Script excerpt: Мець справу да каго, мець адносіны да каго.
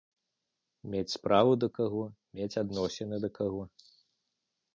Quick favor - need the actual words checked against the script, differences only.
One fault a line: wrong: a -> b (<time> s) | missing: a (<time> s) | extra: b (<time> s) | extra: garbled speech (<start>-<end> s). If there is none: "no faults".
no faults